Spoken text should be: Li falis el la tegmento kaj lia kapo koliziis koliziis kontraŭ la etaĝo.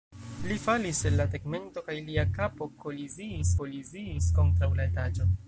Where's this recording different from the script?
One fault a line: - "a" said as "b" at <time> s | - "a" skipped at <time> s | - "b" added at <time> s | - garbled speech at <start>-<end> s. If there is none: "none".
none